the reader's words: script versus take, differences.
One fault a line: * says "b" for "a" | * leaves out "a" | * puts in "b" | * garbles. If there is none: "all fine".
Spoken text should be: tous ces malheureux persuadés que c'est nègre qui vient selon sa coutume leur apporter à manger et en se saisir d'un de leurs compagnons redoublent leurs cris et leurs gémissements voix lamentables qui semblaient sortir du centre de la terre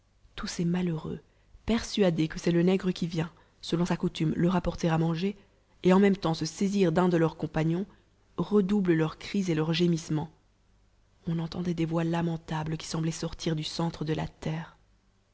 * puts in "le"
* puts in "même temps"
* puts in "on entendait des"